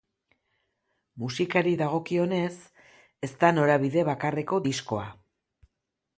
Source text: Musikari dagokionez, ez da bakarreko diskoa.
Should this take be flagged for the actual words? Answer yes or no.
yes